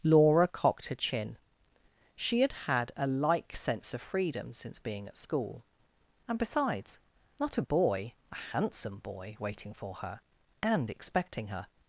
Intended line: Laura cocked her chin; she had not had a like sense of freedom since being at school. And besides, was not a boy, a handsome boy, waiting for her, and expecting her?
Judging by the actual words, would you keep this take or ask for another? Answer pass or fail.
fail